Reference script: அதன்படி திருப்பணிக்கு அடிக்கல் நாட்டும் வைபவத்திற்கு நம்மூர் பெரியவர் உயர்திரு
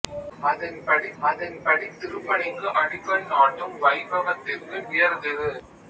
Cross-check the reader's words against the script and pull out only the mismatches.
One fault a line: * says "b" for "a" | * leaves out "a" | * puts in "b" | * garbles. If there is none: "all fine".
* puts in "அதன்படி"
* leaves out "நம்மூர் பெரியவர்"